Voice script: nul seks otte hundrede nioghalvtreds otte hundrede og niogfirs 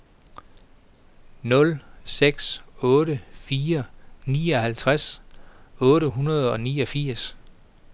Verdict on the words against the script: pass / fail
fail